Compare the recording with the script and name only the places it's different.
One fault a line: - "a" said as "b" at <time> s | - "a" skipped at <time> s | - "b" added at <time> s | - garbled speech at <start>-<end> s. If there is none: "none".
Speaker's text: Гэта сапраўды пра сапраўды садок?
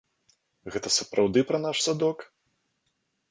- "сапраўды" said as "наш" at 1.7 s